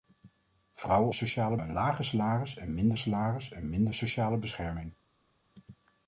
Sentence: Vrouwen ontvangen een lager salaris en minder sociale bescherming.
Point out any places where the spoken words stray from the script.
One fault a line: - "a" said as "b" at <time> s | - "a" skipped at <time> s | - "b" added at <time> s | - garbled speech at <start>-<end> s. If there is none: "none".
- "ontvangen" said as "sociale" at 1.1 s
- "salaris en minder" added at 3.0 s